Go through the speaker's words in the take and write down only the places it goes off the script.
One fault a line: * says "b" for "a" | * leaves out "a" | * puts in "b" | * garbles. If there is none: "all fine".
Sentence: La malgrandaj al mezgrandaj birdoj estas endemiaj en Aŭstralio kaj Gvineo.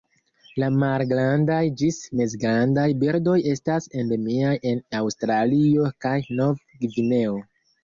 * says "ĝis" for "al"
* puts in "Nov"